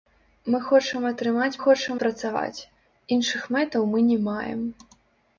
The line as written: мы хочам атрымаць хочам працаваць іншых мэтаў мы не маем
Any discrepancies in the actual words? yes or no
no